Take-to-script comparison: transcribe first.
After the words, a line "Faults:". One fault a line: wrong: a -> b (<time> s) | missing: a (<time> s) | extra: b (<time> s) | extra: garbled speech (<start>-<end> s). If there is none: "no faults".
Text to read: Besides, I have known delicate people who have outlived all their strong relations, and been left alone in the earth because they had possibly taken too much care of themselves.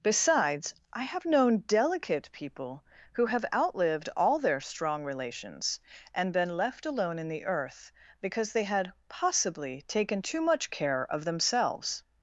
Besides, I have known delicate people who have outlived all their strong relations, and been left alone in the earth because they had possibly taken too much care of themselves.
Faults:
no faults